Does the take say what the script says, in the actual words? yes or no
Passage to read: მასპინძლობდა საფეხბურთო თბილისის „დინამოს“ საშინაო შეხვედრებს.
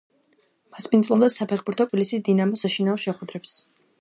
yes